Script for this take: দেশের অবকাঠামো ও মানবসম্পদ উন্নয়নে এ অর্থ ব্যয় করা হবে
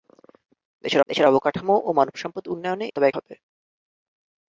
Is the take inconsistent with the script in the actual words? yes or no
yes